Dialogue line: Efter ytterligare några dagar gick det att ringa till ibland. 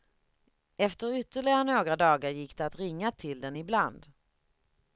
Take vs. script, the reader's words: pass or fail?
fail